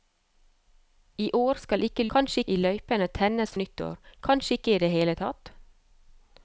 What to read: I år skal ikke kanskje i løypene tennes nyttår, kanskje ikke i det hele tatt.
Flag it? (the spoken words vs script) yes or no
no